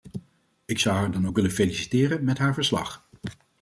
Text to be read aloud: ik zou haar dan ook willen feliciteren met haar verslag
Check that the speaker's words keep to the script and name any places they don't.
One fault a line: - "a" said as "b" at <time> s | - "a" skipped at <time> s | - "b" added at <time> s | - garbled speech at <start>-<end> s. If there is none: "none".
none